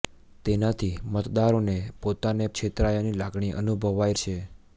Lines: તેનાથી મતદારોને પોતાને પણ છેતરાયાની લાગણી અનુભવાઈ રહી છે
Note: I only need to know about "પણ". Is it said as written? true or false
false